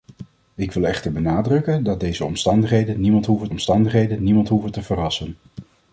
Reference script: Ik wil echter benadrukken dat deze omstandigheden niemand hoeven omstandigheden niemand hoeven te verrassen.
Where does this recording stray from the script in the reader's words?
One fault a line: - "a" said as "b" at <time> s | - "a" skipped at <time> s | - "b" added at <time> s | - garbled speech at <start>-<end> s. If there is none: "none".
none